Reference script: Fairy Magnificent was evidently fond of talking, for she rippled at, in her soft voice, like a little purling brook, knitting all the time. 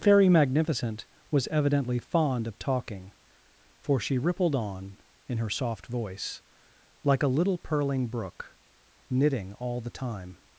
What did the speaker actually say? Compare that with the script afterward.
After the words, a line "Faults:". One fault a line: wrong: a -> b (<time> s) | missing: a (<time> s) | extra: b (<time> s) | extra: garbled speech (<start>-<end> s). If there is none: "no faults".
Fairy Magnificent was evidently fond of talking, for she rippled on, in her soft voice, like a little purling brook, knitting all the time.
Faults:
wrong: at -> on (4.5 s)